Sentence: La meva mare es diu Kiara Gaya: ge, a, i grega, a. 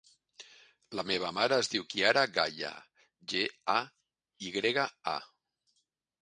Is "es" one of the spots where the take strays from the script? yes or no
no